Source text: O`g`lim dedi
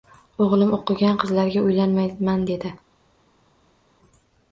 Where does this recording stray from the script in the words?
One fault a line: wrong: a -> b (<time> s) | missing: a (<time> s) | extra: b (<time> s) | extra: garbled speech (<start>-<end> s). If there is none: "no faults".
extra: o`qigan qizlarga uylanmayman (0.8 s)